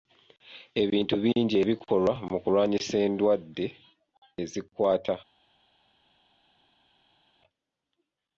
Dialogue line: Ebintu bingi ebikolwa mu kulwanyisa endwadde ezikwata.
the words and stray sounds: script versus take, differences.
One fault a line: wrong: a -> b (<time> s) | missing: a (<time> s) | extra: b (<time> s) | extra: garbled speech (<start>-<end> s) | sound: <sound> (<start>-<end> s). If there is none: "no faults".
no faults